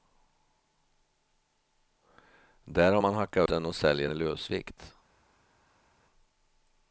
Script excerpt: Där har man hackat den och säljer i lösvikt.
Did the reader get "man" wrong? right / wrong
right